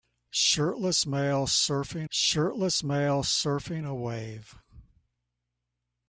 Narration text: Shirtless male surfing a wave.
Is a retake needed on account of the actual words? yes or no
yes